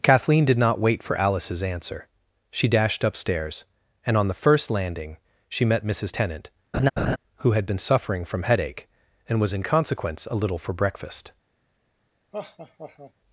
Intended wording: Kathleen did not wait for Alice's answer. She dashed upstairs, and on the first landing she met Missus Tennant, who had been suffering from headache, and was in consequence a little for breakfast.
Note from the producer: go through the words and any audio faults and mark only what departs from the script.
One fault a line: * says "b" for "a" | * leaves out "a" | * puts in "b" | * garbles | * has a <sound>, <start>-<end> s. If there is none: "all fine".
* has a laugh, 6.7-7.2 s
* has a laugh, 12.3-13.1 s